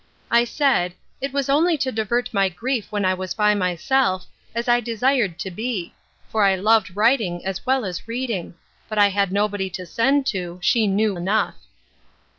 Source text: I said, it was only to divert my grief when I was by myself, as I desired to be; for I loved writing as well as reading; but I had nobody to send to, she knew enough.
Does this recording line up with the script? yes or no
yes